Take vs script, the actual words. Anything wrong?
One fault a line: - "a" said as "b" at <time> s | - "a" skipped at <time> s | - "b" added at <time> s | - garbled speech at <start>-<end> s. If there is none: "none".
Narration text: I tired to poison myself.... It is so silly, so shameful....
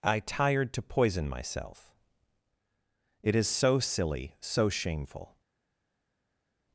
none